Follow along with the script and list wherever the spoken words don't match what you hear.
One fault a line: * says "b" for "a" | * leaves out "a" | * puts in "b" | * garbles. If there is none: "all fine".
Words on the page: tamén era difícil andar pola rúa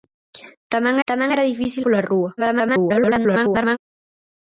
* puts in "tamén"
* leaves out "andar"
* garbles